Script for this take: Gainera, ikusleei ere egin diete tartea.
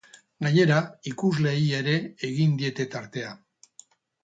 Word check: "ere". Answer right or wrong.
right